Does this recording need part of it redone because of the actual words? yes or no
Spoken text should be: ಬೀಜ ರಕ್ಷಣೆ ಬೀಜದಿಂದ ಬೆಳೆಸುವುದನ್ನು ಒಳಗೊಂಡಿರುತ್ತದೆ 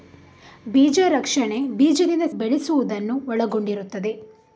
no